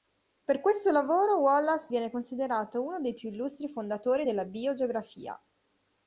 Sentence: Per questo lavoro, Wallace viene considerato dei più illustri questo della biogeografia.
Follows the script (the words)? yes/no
no